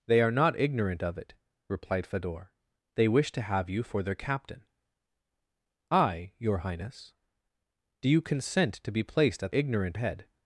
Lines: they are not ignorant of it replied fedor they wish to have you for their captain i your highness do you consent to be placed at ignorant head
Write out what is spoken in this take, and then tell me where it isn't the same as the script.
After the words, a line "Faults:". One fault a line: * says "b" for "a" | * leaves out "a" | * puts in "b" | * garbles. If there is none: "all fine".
they are not ignorant of it replied fedor they wish to have you for their captain i your highness do you consent to be placed at ignorant head
Faults:
all fine